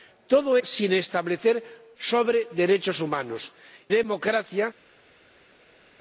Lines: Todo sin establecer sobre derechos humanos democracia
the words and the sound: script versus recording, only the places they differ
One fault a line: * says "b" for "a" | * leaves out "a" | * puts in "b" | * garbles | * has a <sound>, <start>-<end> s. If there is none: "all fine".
all fine